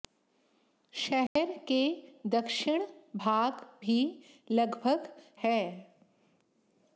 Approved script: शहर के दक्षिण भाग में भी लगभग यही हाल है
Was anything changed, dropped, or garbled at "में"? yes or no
yes